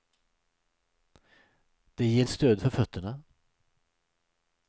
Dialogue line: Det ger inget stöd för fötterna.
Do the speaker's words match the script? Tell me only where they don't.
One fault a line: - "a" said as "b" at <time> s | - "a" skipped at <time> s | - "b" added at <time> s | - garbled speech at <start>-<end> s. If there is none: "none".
- "inget" skipped at 2.3 s